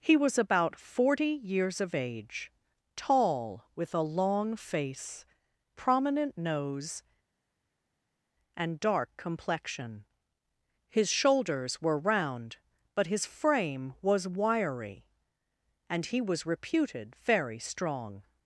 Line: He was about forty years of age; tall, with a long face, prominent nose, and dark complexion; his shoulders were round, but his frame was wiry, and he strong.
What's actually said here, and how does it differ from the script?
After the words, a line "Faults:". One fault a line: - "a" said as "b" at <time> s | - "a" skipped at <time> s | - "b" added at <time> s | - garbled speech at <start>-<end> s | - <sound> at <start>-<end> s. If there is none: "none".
He was about forty years of age; tall, with a long face, prominent nose, and dark complexion; his shoulders were round, but his frame was wiry, and he was reputed very strong.
Faults:
- "was reputed very" added at 16.2 s